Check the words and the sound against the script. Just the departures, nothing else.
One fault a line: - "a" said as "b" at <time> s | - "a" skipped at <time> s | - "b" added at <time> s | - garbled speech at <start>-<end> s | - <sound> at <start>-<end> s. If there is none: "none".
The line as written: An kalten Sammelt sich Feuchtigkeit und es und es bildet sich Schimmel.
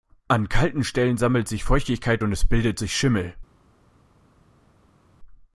- "Stellen" added at 0.8 s
- "und es" skipped at 2.5 s